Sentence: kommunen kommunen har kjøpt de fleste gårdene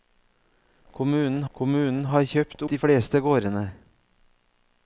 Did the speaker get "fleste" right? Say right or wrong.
right